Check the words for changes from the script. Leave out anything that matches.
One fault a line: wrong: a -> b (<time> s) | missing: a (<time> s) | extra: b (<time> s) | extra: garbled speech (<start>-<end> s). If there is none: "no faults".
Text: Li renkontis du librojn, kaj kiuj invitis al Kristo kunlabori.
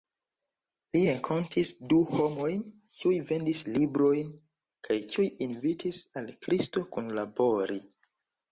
extra: homojn kiuj vendis (2.2 s)